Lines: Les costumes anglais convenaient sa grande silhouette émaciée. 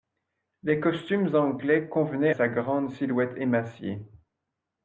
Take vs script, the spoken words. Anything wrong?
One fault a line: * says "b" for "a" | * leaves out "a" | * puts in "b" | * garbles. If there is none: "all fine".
all fine